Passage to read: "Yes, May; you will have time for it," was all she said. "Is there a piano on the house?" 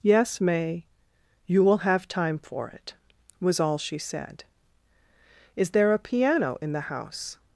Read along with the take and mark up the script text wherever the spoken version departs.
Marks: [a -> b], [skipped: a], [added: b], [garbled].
"Yes, May; you will have time for it," was all she said. "Is there a piano [on -> in] the house?"